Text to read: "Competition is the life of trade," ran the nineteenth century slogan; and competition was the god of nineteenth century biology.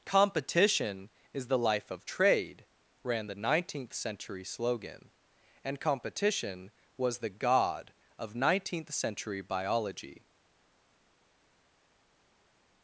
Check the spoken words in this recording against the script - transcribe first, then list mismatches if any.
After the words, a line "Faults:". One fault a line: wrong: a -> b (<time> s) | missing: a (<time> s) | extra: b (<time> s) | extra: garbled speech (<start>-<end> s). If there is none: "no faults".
"Competition is the life of trade," ran the nineteenth century slogan; and competition was the god of nineteenth century biology.
Faults:
no faults